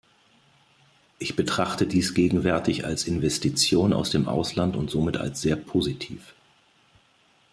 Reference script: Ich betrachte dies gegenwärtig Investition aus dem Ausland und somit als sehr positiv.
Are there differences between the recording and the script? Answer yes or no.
yes